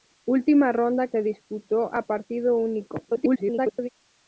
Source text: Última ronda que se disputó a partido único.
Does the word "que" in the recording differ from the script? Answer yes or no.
yes